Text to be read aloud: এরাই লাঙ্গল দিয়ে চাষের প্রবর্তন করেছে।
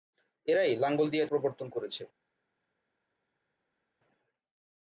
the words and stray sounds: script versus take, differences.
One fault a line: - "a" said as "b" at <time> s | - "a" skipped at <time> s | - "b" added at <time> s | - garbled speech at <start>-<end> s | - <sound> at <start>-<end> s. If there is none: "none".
- "চাষের" skipped at 1.2 s